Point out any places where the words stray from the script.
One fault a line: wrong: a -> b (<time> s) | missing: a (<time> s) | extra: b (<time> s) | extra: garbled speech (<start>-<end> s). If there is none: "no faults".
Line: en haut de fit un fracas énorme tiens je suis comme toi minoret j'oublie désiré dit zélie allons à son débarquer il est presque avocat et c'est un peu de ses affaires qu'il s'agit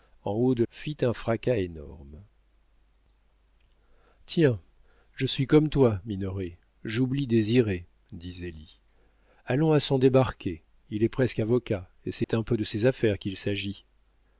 no faults